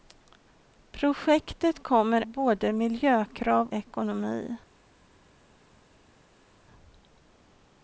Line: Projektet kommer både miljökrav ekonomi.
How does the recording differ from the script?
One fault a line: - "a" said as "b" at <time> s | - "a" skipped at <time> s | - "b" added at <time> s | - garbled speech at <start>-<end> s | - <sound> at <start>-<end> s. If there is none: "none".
none